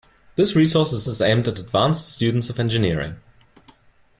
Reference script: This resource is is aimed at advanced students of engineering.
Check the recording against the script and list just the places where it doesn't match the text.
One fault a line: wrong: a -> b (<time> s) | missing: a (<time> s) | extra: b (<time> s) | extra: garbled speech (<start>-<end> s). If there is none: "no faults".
no faults